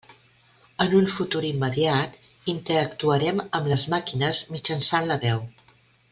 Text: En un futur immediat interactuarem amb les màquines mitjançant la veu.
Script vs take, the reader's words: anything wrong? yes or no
no